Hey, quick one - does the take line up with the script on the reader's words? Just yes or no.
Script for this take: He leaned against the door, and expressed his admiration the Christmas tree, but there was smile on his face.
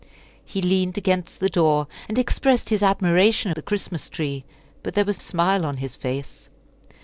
yes